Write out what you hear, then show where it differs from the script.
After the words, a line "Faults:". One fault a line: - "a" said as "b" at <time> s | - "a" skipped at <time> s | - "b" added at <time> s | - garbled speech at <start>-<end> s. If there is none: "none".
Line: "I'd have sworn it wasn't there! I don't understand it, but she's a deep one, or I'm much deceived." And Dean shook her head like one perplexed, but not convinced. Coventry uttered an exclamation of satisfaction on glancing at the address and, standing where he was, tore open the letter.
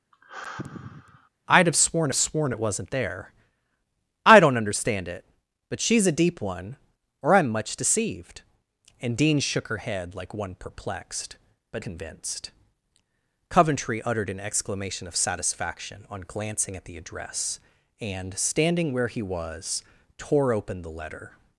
"I'd have sworn sworn it wasn't there! I don't understand it, but she's a deep one, or I'm much deceived." And Dean shook her head like one perplexed, but convinced. Coventry uttered an exclamation of satisfaction on glancing at the address and, standing where he was, tore open the letter.
Faults:
- "sworn" added at 2.1 s
- "not" skipped at 11.8 s